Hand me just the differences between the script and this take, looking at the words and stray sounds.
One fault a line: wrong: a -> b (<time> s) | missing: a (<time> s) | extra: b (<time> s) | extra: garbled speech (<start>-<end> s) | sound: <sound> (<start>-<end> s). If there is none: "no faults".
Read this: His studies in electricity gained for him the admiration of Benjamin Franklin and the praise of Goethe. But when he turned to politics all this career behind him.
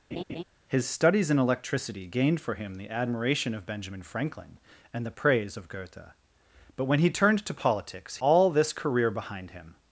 sound: laugh (0.1-0.4 s)